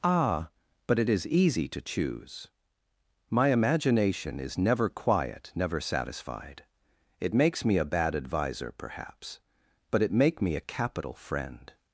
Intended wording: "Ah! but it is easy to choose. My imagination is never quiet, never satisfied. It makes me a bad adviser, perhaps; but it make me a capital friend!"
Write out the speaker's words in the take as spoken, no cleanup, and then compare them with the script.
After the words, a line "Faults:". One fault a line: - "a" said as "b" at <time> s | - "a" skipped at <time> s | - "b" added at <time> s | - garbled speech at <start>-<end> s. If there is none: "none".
"Ah! but it is easy to choose. My imagination is never quiet, never satisfied. It makes me a bad adviser, perhaps; but it make me a capital friend!"
Faults:
none